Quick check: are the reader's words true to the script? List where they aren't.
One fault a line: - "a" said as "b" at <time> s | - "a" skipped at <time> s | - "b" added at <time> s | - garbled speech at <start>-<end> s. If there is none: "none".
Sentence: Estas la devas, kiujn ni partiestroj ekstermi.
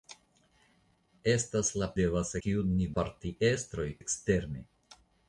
none